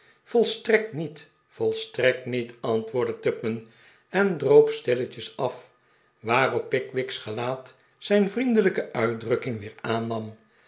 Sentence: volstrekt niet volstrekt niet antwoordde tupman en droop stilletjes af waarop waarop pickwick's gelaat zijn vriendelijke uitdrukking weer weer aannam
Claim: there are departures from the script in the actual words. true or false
true